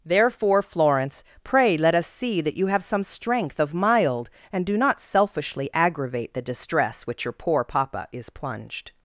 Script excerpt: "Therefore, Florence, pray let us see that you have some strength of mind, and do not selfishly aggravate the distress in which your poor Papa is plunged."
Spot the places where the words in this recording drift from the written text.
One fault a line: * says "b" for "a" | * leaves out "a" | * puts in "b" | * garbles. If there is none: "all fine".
* says "mild" for "mind"
* leaves out "in"